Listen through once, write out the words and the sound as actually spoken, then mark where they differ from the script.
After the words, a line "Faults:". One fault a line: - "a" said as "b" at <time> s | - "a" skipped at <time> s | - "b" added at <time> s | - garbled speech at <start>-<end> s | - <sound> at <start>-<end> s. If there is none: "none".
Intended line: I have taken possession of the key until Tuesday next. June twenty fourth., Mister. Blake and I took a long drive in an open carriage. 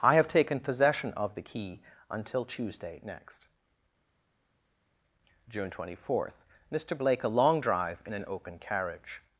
I have taken possession of the key until Tuesday next. June twenty fourth., Mister. Blake a long drive in an open carriage.
Faults:
- "and I took" skipped at 7.2 s